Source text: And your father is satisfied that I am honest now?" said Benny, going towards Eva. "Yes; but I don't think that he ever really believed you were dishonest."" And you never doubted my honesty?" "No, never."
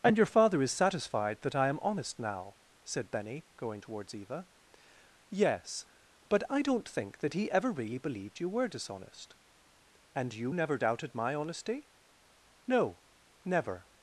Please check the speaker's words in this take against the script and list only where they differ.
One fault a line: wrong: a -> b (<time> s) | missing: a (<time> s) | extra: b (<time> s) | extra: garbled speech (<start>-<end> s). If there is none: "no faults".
no faults